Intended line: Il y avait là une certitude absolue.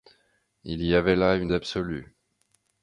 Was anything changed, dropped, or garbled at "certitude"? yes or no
yes